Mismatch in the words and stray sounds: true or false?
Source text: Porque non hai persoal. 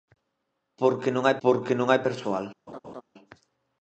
true